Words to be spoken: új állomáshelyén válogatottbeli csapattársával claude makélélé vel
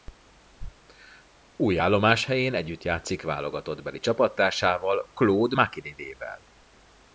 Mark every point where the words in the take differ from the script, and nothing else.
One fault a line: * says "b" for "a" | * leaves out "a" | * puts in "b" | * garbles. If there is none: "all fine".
* puts in "együtt játszik"